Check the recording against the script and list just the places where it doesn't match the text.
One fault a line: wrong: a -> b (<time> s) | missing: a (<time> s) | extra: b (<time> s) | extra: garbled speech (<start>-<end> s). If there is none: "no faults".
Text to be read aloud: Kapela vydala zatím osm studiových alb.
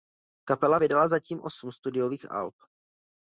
no faults